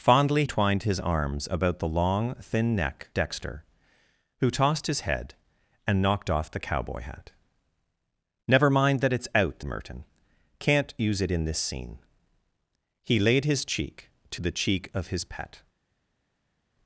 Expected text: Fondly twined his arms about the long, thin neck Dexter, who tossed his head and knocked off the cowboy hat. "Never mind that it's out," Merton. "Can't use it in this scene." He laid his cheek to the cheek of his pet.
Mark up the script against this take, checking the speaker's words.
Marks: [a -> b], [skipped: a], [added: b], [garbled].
Fondly twined his arms about the long, thin neck Dexter, who tossed his head and knocked off the cowboy hat. "Never mind that it's out," Merton. "Can't use it in this scene." He laid his cheek to the cheek of his pet.